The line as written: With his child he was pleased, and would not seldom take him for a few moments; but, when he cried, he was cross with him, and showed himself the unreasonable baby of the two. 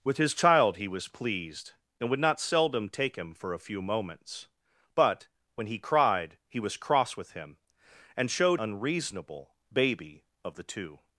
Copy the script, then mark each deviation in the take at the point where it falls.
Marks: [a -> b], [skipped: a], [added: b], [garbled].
With his child he was pleased, and would not seldom take him for a few moments; but, when he cried, he was cross with him, and showed [skipped: himself the] unreasonable baby of the two.